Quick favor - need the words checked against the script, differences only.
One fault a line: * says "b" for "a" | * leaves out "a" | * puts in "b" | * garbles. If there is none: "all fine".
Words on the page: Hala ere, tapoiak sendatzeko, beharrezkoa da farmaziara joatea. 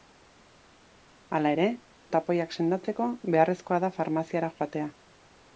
all fine